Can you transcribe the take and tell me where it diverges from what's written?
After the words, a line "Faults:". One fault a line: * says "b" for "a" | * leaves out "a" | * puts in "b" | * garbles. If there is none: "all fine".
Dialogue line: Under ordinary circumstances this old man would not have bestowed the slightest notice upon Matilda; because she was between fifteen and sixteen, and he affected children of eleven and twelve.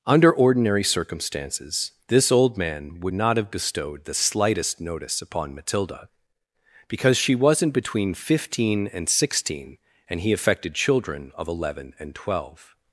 Under ordinary circumstances this old man would not have bestowed the slightest notice upon Matilda; because she wasn't between fifteen and sixteen, and he affected children of eleven and twelve.
Faults:
* says "wasn't" for "was"